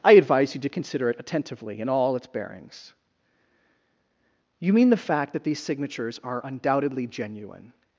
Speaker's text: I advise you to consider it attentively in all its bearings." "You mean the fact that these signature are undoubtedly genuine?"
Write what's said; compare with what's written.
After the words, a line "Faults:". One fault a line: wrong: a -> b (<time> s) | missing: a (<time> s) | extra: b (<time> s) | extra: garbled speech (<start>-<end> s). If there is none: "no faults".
I advise you to consider it attentively in all its bearings." "You mean the fact that these signatures are undoubtedly genuine?"
Faults:
wrong: signature -> signatures (5.6 s)